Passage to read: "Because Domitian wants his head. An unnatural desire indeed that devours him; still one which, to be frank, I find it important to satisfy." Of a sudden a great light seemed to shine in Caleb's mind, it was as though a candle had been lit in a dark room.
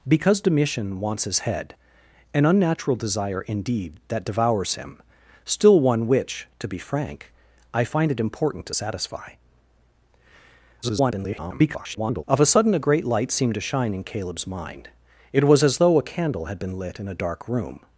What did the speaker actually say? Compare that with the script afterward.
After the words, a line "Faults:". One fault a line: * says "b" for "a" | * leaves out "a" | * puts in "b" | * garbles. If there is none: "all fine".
"Because Domitian wants his head. An unnatural desire indeed that devours him; still one which, to be frank, I find it important to satisfy." [garbled] Of a sudden a great light seemed to shine in Caleb's mind, it was as though a candle had been lit in a dark room.
Faults:
* garbles